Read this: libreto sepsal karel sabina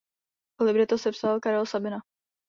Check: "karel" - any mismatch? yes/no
no